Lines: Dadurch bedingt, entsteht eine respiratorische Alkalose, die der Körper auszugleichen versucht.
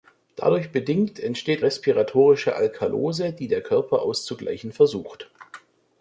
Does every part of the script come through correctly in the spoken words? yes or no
no